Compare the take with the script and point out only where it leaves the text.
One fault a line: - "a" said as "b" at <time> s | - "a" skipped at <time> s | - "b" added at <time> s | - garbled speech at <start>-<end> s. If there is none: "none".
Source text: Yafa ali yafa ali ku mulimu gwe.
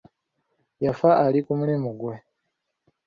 - "yafa ali" skipped at 1.4 s